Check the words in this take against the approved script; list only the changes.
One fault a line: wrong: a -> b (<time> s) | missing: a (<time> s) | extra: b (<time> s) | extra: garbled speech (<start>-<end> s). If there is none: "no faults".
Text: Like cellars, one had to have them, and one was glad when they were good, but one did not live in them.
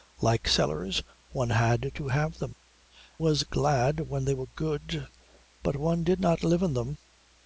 missing: and one (2.5 s)